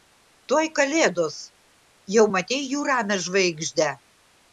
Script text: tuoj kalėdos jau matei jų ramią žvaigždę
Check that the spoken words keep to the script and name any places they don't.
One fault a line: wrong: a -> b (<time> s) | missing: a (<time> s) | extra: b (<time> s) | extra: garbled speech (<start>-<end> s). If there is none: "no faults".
no faults